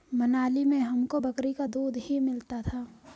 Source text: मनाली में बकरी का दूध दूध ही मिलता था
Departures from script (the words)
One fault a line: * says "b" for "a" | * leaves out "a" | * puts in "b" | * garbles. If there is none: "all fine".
* puts in "हमको"
* leaves out "दूध"